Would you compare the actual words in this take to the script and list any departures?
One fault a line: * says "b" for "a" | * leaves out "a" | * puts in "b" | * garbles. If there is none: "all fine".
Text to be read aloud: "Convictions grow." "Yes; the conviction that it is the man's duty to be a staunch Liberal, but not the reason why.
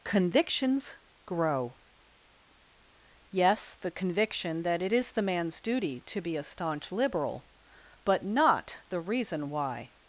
all fine